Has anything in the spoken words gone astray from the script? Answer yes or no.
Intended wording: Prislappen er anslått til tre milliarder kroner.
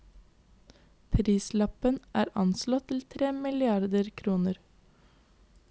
no